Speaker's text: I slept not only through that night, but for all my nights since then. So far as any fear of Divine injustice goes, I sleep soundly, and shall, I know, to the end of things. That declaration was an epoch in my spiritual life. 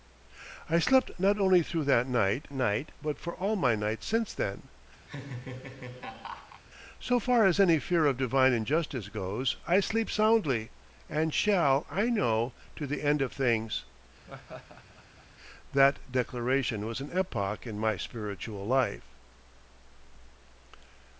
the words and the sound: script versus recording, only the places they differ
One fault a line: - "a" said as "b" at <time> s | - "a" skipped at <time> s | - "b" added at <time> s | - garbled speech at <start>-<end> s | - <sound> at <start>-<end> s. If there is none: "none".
- "night" added at 2.5 s
- laugh at 5.1-6.6 s
- laugh at 14.3-15.3 s